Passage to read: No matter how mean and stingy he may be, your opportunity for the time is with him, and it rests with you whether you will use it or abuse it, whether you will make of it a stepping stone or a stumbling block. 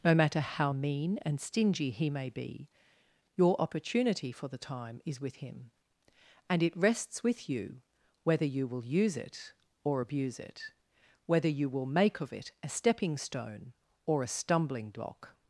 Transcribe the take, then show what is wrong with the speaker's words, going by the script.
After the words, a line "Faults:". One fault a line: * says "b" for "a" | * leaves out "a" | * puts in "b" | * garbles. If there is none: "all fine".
No matter how mean and stingy he may be, your opportunity for the time is with him, and it rests with you whether you will use it or abuse it, whether you will make of it a stepping stone or a stumbling block.
Faults:
all fine